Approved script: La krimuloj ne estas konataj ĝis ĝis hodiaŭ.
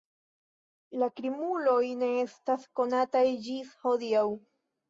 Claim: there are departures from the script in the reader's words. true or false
true